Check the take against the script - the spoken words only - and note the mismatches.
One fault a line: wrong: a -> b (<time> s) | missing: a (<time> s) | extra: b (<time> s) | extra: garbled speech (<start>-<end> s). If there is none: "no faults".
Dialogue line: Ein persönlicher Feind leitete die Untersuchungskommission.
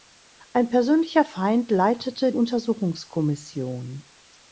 missing: die (2.3 s)